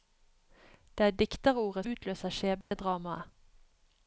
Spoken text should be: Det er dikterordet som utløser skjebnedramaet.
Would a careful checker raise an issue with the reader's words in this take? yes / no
yes